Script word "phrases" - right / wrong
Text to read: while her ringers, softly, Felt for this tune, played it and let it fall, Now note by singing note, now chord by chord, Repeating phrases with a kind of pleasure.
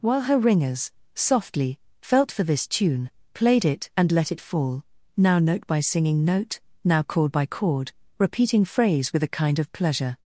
wrong